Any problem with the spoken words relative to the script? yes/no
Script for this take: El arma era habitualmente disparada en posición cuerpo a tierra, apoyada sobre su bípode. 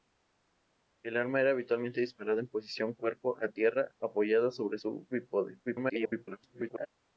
yes